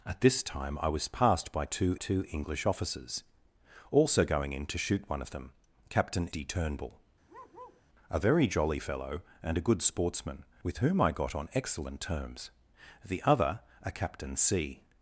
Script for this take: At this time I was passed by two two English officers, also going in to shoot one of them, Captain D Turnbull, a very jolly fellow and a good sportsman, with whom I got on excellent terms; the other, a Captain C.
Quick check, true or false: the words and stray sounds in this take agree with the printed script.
false